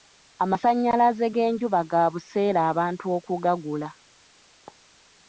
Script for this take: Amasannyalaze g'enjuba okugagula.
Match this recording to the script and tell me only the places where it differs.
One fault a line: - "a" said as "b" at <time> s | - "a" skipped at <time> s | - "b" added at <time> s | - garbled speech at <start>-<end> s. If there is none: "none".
- "ga buseere abantu" added at 1.9 s